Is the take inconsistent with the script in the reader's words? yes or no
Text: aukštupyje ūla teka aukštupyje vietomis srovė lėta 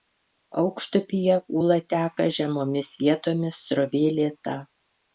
yes